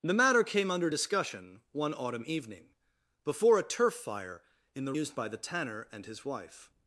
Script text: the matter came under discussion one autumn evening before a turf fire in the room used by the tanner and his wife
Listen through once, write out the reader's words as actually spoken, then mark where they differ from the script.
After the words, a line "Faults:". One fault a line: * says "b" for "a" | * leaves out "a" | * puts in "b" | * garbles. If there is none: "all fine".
the matter came under discussion one autumn evening before a turf fire in the used by the tanner and his wife
Faults:
* leaves out "room"